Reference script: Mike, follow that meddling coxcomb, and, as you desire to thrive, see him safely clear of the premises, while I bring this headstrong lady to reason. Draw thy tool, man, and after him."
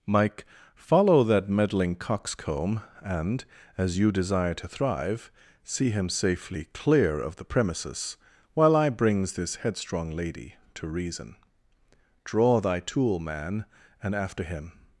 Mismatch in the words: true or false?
true